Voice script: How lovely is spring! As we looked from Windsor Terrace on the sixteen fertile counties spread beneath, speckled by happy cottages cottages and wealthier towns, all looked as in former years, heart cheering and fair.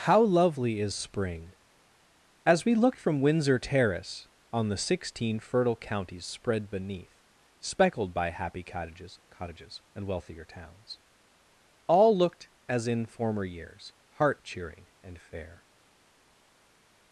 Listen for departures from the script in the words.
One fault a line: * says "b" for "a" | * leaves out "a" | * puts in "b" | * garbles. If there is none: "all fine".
all fine